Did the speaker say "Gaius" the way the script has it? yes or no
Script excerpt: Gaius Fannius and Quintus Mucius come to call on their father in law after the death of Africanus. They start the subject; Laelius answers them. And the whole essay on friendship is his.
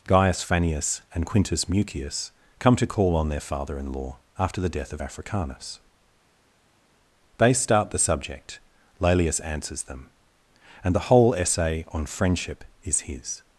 yes